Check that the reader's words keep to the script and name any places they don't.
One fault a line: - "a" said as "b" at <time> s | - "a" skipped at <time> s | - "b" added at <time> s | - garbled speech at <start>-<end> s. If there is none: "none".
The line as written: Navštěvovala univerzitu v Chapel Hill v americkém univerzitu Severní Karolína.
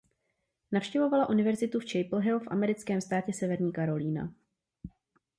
- "univerzitu" said as "státě" at 3.0 s